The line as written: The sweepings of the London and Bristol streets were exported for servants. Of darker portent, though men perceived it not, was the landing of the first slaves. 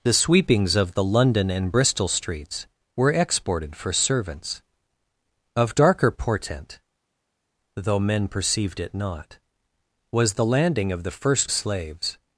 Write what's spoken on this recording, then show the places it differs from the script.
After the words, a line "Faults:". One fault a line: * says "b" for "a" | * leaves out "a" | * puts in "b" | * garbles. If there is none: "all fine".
The sweepings of the London and Bristol streets were exported for servants. Of darker portent, though men perceived it not, was the landing of the first slaves.
Faults:
all fine